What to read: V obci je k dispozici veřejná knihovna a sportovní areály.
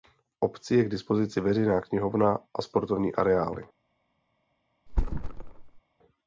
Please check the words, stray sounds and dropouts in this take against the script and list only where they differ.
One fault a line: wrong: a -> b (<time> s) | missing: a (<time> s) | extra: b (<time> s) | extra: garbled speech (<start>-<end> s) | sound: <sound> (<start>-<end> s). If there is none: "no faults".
sound: thud (4.9-5.8 s)